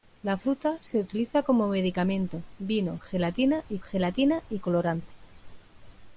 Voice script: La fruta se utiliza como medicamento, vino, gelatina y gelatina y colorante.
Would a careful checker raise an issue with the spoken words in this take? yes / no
no